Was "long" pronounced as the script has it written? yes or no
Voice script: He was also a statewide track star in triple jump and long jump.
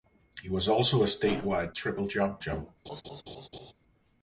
no